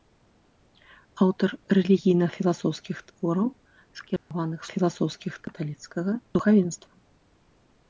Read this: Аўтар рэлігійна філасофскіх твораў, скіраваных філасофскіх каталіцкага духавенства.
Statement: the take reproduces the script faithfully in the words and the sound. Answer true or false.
false